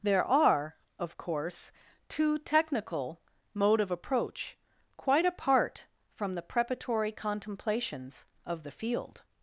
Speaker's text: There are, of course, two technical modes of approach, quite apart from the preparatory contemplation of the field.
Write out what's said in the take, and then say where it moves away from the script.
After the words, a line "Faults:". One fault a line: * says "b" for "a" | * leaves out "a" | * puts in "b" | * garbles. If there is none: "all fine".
There are, of course, two technical mode of approach, quite apart from the preparatory contemplations of the field.
Faults:
* says "mode" for "modes"
* says "contemplations" for "contemplation"